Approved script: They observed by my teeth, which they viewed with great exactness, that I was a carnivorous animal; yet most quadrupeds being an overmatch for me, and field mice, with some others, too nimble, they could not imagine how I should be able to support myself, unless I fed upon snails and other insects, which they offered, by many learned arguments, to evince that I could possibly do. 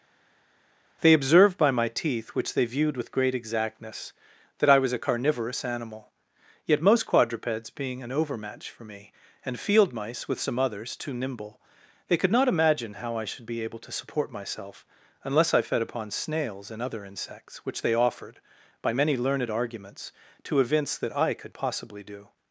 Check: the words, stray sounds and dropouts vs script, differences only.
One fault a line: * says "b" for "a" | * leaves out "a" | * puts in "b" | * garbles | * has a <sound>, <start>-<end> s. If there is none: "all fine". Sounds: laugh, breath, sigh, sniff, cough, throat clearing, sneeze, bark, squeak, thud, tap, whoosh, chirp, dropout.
all fine